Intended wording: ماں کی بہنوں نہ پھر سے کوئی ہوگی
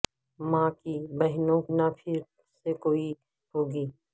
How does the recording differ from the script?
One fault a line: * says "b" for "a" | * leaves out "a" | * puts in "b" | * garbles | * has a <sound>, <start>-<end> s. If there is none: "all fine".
all fine